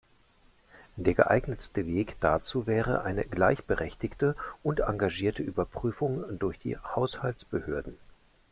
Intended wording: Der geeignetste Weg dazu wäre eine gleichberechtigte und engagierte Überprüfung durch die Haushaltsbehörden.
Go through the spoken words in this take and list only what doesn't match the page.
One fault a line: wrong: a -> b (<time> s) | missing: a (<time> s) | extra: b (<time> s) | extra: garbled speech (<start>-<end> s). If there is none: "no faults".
no faults